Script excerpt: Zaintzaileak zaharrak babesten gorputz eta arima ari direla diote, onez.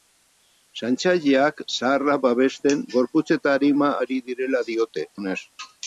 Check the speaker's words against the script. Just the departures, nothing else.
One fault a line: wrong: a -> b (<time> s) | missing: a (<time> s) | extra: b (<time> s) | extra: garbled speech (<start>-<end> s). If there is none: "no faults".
no faults